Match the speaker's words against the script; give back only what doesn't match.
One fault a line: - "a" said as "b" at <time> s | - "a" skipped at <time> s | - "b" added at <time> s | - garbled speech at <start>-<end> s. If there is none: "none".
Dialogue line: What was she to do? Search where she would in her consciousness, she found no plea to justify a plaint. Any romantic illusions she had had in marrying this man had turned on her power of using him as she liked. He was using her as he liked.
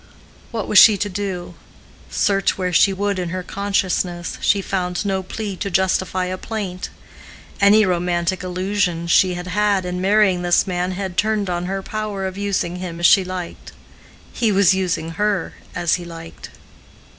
none